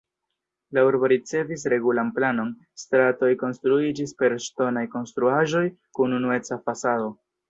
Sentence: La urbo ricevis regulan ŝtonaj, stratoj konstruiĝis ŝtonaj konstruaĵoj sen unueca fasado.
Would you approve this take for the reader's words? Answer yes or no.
no